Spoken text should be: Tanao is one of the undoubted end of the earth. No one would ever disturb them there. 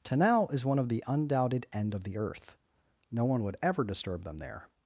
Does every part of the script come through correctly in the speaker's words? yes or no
yes